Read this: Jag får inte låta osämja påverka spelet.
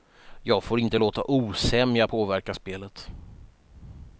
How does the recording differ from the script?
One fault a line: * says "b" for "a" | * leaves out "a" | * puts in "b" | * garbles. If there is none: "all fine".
all fine